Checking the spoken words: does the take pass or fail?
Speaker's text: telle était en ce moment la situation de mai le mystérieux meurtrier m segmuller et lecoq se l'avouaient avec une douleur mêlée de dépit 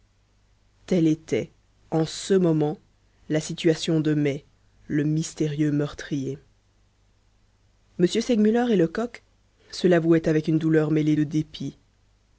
pass